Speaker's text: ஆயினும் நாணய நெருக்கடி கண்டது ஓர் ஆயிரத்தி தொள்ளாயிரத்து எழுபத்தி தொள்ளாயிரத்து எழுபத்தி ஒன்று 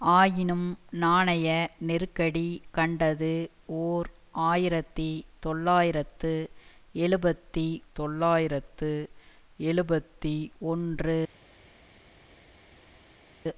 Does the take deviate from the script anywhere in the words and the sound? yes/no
no